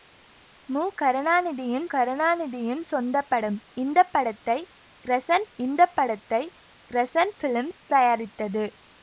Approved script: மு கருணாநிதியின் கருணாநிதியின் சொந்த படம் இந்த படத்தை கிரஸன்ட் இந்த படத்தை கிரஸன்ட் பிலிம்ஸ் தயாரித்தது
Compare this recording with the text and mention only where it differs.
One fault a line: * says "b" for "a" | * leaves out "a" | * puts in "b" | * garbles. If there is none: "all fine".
all fine